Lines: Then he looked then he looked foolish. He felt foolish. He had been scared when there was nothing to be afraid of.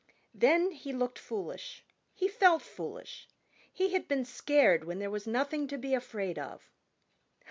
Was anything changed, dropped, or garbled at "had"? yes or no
no